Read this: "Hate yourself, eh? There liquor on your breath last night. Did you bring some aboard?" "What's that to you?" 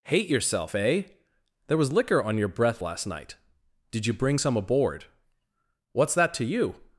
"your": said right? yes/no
yes